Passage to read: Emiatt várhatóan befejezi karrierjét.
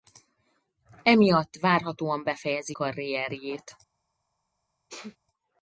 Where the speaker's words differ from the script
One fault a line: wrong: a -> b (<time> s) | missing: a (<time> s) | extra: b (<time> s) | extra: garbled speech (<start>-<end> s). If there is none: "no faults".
no faults